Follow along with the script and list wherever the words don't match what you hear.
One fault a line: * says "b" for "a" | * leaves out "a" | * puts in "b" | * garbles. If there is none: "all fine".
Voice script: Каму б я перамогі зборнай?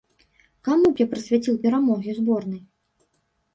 * puts in "прысвяціў"